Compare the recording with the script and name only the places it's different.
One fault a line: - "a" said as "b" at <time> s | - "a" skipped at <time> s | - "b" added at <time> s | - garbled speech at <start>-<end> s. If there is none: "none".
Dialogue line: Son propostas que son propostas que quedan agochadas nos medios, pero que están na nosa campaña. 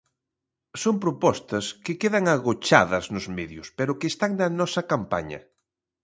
- "son propostas que" skipped at 2.0 s